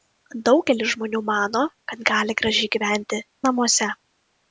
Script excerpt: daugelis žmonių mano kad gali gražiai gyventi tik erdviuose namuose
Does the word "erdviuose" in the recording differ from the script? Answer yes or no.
yes